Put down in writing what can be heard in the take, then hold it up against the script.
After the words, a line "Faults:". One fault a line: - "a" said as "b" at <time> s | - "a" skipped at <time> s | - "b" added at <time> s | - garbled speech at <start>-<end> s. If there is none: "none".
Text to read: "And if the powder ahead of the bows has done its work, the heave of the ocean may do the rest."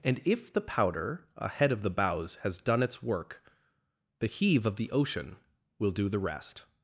"And if the powder ahead of the bows has done its work, the heave of the ocean will do the rest."
Faults:
- "may" said as "will" at 5.8 s